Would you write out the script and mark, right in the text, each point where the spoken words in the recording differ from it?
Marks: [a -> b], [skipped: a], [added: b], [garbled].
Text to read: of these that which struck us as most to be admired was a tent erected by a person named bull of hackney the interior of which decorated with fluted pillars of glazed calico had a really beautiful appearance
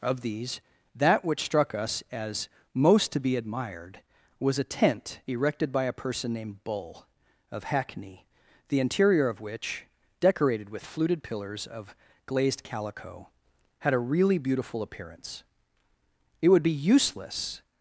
of these that which struck us as most to be admired was a tent erected by a person named bull of hackney the interior of which decorated with fluted pillars of glazed calico had a really beautiful appearance [added: it would be useless]